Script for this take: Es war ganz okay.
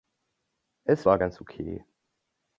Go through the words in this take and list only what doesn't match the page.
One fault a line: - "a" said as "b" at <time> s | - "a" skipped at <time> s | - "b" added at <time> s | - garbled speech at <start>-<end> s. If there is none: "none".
none